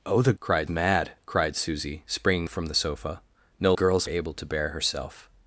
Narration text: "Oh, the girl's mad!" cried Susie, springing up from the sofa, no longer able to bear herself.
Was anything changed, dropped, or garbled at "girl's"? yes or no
yes